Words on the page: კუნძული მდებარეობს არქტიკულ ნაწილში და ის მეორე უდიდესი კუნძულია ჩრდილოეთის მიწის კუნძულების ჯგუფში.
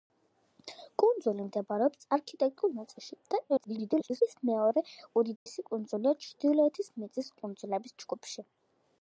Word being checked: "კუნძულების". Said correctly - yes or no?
yes